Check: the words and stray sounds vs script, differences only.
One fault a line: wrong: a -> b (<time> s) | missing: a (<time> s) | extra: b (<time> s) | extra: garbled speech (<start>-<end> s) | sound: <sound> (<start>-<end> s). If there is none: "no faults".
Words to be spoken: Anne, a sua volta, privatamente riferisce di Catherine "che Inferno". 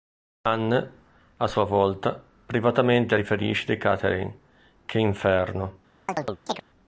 sound: chirp (6.1-6.6 s)